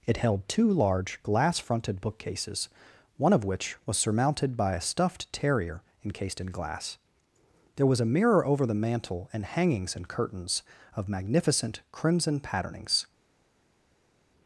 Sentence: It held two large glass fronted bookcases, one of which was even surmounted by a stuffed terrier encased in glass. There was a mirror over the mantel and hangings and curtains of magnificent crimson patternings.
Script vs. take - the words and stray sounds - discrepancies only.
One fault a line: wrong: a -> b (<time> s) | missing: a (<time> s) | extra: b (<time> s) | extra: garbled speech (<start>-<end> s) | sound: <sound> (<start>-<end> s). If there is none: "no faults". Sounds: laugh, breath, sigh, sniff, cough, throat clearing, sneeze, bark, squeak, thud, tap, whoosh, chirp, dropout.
missing: even (4.0 s)